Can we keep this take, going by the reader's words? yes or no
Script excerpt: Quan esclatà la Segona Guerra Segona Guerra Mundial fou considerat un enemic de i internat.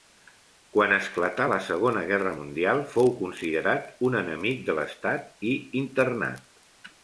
no